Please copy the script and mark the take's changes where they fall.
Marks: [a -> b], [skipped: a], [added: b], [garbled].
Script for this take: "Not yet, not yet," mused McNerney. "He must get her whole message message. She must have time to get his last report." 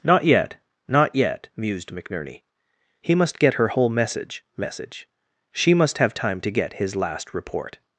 "Not yet, not yet," mused McNerney. "He must get her whole message message. She must have time to get his last report."